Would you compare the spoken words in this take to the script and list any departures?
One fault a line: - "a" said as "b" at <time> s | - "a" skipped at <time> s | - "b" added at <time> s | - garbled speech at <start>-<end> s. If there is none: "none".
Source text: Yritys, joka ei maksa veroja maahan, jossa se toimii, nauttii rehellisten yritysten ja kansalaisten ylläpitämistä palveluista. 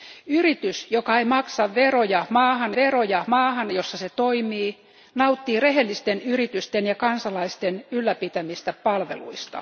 - "veroja maahan" added at 2.8 s